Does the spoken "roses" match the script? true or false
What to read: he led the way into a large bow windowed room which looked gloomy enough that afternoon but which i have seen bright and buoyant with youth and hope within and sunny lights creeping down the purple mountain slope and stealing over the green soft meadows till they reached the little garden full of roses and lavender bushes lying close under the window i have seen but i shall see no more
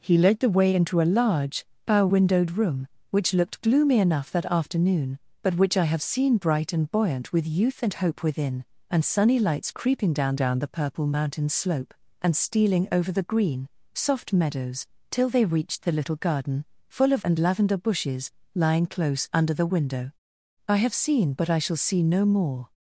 false